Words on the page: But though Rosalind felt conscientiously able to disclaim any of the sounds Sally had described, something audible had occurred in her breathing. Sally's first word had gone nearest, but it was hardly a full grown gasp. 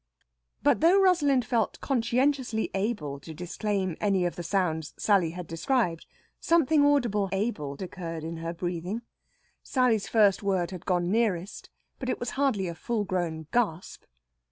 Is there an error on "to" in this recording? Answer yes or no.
no